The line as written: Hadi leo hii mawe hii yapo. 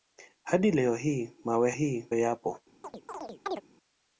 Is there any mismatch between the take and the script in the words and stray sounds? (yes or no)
yes